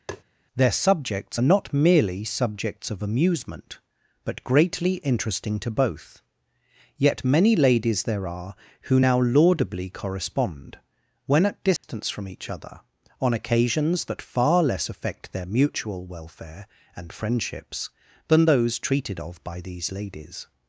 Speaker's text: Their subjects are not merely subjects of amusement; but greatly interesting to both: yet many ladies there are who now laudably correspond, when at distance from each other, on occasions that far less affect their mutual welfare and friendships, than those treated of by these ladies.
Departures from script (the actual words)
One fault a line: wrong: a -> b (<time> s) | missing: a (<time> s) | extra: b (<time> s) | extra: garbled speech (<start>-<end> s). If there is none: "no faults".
no faults